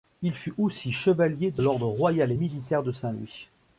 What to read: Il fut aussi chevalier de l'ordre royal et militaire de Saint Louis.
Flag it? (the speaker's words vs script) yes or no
no